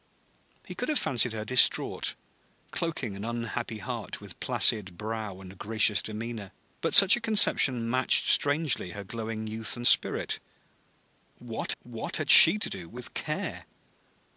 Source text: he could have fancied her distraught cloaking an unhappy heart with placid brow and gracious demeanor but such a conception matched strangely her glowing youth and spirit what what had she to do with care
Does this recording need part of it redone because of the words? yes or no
no